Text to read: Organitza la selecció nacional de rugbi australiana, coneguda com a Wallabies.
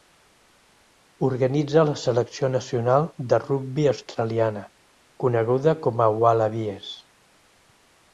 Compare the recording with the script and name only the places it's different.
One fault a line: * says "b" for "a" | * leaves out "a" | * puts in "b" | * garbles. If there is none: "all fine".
all fine